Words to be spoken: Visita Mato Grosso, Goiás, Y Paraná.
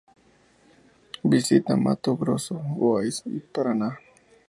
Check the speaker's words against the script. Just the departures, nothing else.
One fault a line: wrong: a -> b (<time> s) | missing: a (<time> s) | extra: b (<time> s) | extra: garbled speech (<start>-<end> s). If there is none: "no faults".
no faults